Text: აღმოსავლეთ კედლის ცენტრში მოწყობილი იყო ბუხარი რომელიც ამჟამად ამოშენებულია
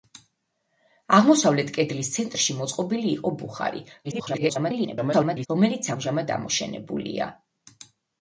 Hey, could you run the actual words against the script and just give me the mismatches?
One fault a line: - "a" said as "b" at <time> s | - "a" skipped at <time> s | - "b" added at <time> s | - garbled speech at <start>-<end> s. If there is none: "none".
- garbled speech at 4.0-5.5 s